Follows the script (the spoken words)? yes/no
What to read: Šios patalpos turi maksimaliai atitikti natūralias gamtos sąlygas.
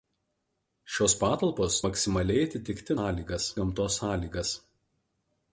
no